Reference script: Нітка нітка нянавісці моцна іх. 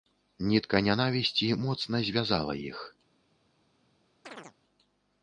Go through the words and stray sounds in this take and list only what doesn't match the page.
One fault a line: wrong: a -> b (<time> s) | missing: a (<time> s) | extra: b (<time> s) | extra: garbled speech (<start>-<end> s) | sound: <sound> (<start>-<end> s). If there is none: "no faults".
missing: нітка (0.8 s)
extra: звязала (2.0 s)
sound: chirp (4.2-4.5 s)